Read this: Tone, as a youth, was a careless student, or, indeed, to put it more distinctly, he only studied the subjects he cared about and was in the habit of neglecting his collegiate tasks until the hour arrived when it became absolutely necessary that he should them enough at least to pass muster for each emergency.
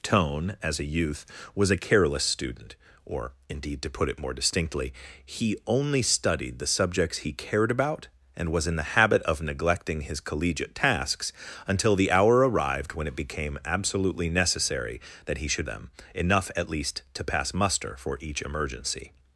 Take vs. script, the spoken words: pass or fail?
pass